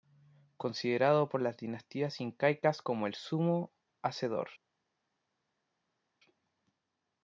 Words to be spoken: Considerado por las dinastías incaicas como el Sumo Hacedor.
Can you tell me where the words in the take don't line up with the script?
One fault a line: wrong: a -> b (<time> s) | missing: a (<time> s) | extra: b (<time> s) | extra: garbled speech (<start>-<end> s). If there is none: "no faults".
no faults